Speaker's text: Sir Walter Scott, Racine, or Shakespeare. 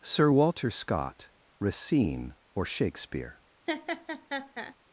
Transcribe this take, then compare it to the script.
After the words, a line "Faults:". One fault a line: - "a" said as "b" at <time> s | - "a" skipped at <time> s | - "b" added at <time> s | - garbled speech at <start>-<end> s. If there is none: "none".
Sir Walter Scott, Racine, or Shakespeare.
Faults:
none